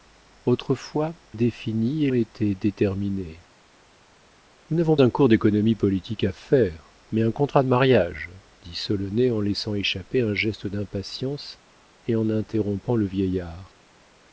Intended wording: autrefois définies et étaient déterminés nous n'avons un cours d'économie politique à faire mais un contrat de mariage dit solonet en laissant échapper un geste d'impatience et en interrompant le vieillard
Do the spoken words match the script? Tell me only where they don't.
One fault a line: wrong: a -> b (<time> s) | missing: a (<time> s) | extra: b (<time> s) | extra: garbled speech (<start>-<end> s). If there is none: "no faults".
no faults